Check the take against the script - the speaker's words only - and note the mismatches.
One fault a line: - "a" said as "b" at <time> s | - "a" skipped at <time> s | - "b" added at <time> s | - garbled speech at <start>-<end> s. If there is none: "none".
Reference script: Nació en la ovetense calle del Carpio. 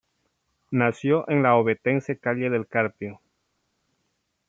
none